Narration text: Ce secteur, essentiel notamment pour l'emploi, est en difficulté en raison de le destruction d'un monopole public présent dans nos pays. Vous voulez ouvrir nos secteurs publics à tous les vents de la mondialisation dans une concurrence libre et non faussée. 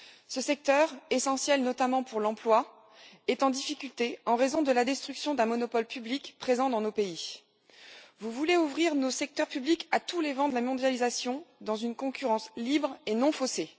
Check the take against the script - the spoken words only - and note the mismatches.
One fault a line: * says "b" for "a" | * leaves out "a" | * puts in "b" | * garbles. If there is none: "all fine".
* says "la" for "le"